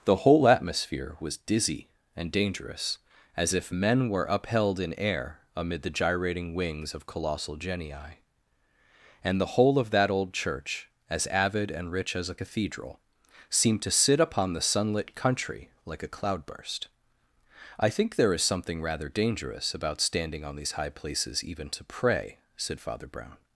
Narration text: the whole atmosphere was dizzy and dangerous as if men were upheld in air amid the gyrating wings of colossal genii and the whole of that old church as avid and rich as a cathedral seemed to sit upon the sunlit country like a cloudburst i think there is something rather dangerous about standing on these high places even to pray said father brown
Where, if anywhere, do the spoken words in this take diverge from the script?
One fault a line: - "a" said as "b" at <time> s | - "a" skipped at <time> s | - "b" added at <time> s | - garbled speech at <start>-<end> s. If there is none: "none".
none